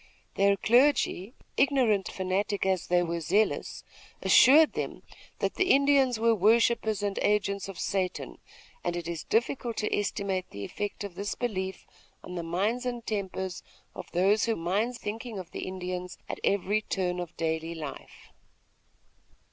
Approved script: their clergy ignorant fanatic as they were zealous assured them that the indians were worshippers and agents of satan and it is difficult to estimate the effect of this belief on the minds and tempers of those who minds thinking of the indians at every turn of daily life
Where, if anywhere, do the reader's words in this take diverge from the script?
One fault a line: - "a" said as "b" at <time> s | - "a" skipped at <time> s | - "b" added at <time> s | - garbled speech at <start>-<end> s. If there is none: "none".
none